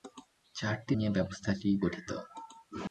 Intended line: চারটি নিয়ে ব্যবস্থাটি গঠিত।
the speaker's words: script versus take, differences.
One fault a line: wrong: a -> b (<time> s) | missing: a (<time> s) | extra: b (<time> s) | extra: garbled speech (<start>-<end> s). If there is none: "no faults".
no faults